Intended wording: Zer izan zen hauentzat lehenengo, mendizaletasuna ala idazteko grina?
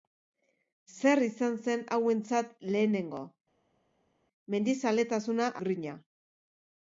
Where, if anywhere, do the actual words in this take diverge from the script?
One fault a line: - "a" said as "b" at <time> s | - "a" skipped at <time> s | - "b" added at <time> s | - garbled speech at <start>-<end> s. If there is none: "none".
- "ala idazteko" skipped at 5.5 s